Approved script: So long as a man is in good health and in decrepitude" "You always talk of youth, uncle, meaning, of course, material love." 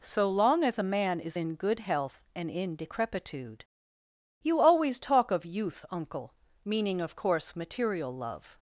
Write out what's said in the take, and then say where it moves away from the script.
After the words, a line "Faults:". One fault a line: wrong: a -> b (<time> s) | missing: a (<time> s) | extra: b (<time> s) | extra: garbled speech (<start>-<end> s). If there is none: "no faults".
So long as a man is in good health and in decrepitude" "You always talk of youth, uncle, meaning, of course, material love."
Faults:
no faults